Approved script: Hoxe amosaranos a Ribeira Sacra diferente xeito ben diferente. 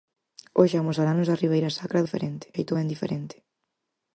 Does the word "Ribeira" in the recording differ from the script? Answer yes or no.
no